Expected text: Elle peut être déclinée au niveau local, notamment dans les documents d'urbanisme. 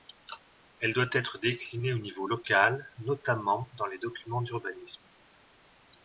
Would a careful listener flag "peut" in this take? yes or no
yes